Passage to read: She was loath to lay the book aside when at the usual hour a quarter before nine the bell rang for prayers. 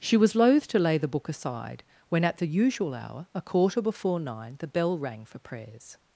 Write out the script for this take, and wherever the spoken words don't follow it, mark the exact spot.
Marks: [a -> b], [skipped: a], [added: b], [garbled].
She was loath to lay the book aside when at the usual hour a quarter before nine the bell rang for prayers.